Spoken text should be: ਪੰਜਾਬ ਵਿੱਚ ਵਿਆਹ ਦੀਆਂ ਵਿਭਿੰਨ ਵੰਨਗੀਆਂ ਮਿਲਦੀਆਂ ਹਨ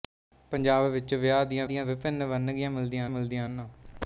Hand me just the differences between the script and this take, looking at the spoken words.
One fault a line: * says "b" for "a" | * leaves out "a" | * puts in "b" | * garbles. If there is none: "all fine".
* puts in "ਦੀਆਂ"
* puts in "ਮਿਲਦੀਆਂ"